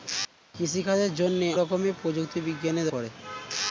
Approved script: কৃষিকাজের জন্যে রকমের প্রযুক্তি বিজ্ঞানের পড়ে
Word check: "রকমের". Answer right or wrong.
right